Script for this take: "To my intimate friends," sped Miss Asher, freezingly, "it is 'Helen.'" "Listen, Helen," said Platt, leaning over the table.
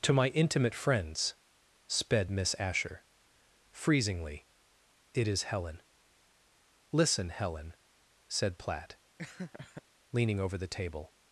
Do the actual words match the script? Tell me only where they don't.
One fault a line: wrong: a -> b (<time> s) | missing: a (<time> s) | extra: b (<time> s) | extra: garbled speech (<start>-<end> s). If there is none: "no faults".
no faults